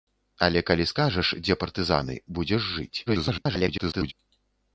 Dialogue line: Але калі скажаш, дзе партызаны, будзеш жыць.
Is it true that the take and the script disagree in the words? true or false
true